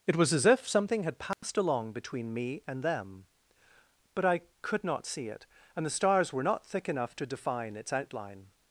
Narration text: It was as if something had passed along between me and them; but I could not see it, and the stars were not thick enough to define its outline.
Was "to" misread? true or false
false